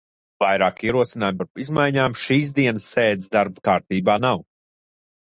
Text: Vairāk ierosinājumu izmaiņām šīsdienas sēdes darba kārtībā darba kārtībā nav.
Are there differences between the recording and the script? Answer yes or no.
yes